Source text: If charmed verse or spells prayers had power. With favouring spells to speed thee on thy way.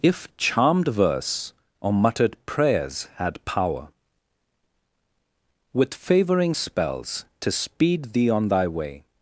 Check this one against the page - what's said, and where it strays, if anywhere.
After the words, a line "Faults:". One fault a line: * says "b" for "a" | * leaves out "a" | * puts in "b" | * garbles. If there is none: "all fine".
If charmed verse or muttered prayers had power. With favouring spells to speed thee on thy way.
Faults:
* says "muttered" for "spells"